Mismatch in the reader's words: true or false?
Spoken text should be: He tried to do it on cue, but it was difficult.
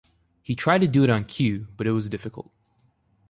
false